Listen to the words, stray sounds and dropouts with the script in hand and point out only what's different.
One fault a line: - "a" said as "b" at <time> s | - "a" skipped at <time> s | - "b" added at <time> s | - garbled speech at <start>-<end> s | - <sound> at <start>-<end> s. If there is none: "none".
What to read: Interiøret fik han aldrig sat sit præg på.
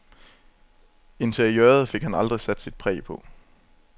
none